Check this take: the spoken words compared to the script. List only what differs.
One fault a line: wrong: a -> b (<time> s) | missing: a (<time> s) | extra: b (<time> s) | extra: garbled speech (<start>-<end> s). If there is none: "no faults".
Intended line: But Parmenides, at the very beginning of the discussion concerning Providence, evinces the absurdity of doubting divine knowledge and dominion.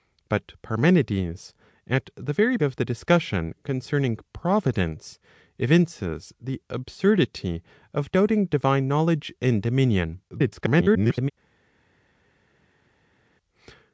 missing: beginning (2.6 s)
extra: garbled speech (10.3-11.3 s)